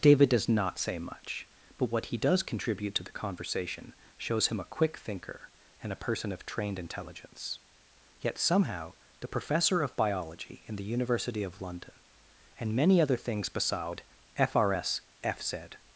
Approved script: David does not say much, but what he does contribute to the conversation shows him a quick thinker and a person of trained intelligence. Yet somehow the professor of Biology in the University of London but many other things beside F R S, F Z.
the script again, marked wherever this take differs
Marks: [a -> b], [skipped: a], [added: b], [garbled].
David does not say much, but what he does contribute to the conversation shows him a quick thinker and a person of trained intelligence. Yet somehow the professor of Biology in the University of London [but -> and] many other things beside F R S, F Z.